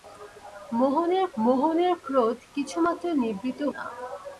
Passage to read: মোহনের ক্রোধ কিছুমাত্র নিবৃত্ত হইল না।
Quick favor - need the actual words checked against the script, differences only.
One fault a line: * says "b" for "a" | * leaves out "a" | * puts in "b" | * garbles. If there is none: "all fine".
* puts in "মোহনের"
* leaves out "হইল"